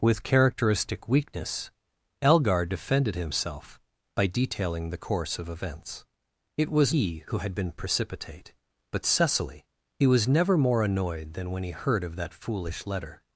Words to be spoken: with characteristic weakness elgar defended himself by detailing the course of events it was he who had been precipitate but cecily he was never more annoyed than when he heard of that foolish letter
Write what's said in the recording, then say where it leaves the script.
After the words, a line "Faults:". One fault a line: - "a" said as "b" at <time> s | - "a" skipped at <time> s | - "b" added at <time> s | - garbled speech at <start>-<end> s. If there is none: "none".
with characteristic weakness elgar defended himself by detailing the course of events it was he who had been precipitate but cecily he was never more annoyed than when he heard of that foolish letter
Faults:
none